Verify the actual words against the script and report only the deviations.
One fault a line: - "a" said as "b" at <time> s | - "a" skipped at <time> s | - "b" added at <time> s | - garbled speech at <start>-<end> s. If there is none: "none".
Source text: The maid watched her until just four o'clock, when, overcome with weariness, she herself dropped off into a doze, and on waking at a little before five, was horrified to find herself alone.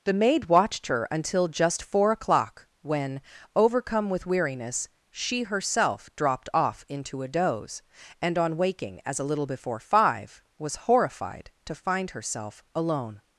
- "at" said as "as" at 9.1 s